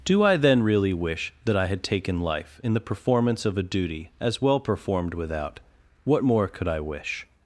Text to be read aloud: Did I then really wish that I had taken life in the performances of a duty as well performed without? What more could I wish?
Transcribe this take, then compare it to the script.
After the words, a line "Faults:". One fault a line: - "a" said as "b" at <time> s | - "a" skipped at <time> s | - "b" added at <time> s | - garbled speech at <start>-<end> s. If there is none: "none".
Do I then really wish that I had taken life in the performance of a duty as well performed without? What more could I wish?
Faults:
- "Did" said as "Do" at 0.0 s
- "performances" said as "performance" at 2.8 s